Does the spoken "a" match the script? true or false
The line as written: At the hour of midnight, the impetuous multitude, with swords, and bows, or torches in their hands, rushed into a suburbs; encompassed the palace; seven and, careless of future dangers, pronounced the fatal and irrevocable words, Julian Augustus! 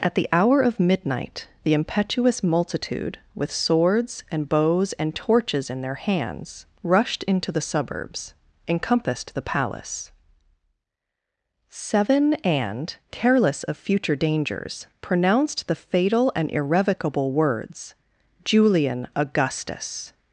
false